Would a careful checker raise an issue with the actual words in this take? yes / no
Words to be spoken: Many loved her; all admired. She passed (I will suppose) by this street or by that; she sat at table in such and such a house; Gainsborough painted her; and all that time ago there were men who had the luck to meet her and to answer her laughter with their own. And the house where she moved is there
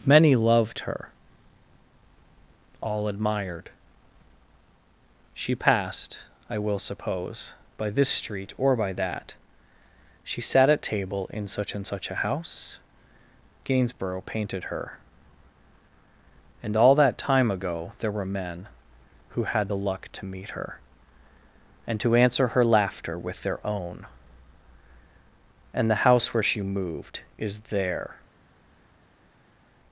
no